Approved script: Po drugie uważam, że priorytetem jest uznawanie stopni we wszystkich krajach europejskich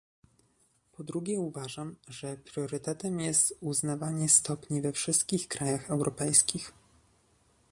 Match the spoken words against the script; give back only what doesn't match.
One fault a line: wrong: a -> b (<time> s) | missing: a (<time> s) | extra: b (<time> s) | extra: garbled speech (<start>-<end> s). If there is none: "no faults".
no faults